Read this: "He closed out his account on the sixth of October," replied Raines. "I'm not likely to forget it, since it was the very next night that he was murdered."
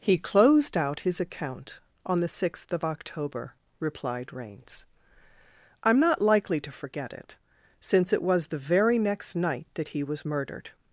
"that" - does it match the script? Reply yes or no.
yes